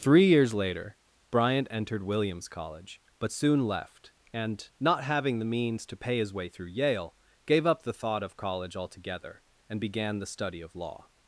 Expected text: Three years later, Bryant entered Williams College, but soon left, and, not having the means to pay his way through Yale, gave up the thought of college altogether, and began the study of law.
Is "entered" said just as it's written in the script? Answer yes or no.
yes